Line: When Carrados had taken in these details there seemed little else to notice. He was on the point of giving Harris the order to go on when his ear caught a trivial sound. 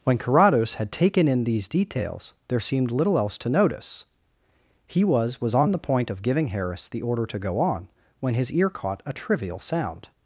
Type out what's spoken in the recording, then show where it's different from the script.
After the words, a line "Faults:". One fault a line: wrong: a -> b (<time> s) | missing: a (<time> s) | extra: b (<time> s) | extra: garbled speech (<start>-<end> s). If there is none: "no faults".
When Carrados had taken in these details there seemed little else to notice. He was was on the point of giving Harris the order to go on when his ear caught a trivial sound.
Faults:
extra: was (5.4 s)